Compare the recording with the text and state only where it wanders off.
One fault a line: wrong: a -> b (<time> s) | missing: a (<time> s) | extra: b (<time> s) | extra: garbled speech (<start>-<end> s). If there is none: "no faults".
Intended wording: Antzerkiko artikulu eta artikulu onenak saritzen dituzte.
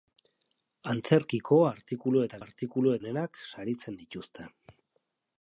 no faults